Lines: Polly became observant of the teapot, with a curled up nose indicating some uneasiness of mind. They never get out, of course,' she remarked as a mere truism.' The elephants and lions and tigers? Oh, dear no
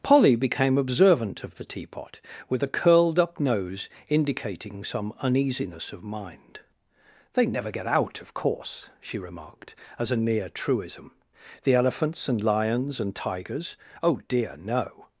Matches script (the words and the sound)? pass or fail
fail